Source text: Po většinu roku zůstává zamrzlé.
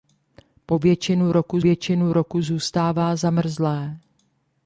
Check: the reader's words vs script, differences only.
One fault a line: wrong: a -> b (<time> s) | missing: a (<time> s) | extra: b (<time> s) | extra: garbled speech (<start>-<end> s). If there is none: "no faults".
extra: většinu roku (1.6 s)